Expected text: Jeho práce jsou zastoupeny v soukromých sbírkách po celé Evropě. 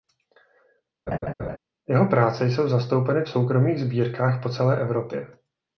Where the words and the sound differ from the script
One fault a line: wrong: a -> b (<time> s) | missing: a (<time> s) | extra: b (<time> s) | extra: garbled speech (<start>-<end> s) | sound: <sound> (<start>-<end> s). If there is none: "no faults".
sound: laugh (1.1-1.6 s)